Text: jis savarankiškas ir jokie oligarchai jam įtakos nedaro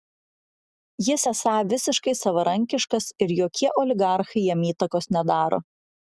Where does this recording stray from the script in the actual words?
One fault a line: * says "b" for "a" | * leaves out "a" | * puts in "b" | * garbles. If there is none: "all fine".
* puts in "esą visiškai"